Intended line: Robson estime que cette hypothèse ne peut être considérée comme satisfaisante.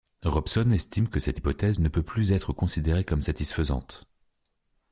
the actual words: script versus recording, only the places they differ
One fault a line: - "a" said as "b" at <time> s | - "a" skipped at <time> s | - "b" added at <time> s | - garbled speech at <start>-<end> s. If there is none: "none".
- "plus" added at 2.0 s